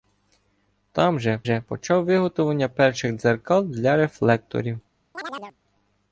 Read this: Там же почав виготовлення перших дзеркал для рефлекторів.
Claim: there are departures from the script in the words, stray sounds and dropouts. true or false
true